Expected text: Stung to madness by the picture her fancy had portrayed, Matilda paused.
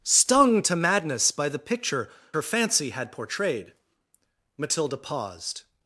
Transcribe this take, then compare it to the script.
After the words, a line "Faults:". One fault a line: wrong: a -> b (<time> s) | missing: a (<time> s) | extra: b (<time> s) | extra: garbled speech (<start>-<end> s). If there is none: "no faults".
Stung to madness by the picture her fancy had portrayed, Matilda paused.
Faults:
no faults